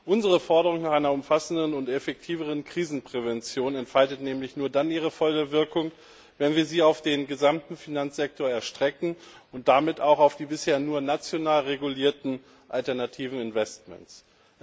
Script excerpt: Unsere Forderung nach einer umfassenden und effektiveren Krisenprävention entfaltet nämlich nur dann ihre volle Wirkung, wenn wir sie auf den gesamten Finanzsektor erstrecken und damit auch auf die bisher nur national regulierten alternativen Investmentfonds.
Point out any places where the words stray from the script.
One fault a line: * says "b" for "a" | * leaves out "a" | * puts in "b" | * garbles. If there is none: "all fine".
all fine